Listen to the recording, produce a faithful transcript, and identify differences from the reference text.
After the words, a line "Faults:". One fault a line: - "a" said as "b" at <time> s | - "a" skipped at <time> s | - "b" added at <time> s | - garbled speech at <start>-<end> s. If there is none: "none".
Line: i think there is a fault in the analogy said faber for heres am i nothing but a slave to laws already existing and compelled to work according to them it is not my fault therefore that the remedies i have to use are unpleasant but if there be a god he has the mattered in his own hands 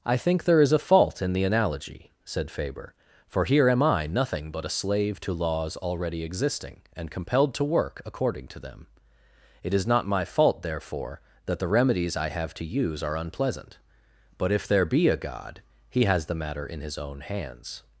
i think there is a fault in the analogy said faber for here am i nothing but a slave to laws already existing and compelled to work according to them it is not my fault therefore that the remedies i have to use are unpleasant but if there be a god he has the matter in his own hands
Faults:
- "heres" said as "here" at 3.5 s
- "mattered" said as "matter" at 16.4 s